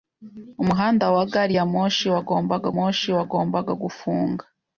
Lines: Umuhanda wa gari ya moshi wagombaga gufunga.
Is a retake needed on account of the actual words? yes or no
yes